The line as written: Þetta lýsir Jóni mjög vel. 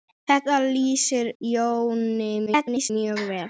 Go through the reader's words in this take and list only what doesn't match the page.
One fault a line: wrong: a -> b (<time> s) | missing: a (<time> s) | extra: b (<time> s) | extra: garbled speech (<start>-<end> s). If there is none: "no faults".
extra: garbled speech (2.5-2.9 s)